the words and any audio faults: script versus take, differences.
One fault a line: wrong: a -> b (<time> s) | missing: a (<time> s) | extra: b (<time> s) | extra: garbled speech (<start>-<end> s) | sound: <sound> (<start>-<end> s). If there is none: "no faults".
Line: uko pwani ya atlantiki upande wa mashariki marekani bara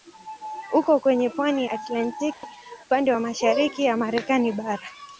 extra: kwenye (1.0 s)
sound: dropout (2.3-2.4 s)
extra: ya (3.8 s)